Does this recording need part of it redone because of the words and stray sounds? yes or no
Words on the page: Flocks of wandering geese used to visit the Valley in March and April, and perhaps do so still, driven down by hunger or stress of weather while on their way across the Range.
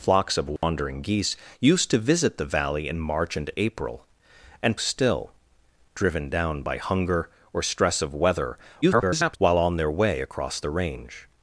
yes